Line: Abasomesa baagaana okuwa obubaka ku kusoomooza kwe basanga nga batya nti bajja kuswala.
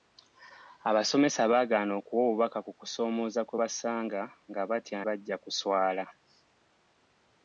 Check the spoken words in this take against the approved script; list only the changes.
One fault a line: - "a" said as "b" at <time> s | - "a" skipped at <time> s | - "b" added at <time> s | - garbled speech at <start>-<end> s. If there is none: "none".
- "nti" skipped at 5.0 s